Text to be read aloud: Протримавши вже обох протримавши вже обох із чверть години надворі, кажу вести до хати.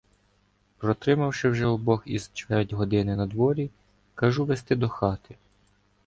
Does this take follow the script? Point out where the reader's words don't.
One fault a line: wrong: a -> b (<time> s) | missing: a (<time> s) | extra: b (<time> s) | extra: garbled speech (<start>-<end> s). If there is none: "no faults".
missing: протримавши вже обох (2.0 s)